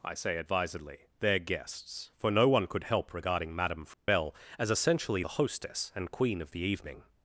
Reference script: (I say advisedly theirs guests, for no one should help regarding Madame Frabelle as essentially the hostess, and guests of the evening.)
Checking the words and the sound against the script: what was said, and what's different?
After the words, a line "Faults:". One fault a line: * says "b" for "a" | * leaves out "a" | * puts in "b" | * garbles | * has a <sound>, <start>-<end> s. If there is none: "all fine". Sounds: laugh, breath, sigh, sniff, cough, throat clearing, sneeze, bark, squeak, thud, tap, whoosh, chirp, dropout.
(I say advisedly their guests, for no one could help regarding Madame Frabelle as essentially the hostess, and queen of the evening.)
Faults:
* says "their" for "theirs"
* says "could" for "should"
* has a dropout, 3.9-4.1 s
* says "queen" for "guests"